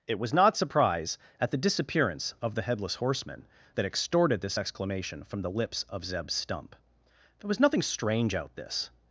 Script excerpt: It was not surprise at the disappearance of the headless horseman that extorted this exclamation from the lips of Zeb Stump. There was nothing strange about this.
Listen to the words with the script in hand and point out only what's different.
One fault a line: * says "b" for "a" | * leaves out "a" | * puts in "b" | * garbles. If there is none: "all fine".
* says "out" for "about"